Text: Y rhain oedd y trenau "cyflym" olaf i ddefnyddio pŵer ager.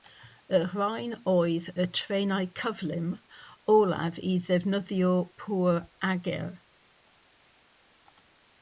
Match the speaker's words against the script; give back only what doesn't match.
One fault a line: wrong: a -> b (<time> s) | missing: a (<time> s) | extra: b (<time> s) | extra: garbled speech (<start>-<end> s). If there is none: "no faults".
no faults